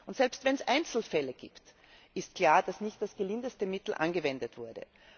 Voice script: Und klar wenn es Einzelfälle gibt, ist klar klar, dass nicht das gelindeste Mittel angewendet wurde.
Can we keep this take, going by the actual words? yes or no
no